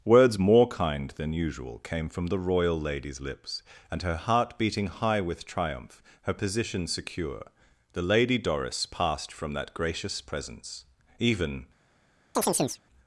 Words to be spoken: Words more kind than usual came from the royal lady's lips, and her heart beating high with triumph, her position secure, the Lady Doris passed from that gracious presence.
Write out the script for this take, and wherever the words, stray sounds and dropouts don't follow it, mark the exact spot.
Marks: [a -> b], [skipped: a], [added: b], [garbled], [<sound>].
Words more kind than usual came from the royal lady's lips, and her heart beating high with triumph, her position secure, the Lady Doris passed from that gracious presence. [added: Even] [chirp]